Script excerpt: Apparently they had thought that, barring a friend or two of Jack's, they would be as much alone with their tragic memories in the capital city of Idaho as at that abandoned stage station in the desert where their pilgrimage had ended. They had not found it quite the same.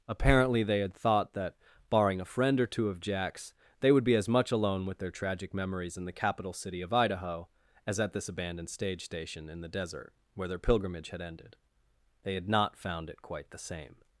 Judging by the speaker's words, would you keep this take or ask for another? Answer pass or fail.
fail